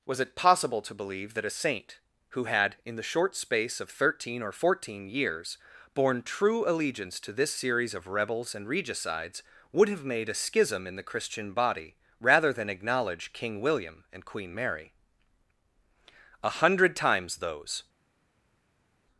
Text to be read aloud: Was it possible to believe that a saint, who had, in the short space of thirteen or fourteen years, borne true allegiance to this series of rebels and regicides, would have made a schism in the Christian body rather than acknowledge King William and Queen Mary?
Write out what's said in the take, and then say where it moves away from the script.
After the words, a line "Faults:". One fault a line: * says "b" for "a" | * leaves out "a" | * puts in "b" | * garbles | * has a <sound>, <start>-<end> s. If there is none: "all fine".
Was it possible to believe that a saint, who had, in the short space of thirteen or fourteen years, borne true allegiance to this series of rebels and regicides, would have made a schism in the Christian body rather than acknowledge King William and Queen Mary? A hundred times those
Faults:
* puts in "A hundred times those"